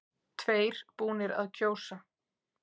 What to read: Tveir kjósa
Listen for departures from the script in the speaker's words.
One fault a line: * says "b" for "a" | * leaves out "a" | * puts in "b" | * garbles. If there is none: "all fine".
* puts in "búnir að"